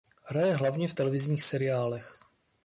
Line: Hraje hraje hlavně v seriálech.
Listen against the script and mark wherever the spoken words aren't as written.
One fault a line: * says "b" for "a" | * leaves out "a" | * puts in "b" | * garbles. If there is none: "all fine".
* leaves out "hraje"
* puts in "televizních"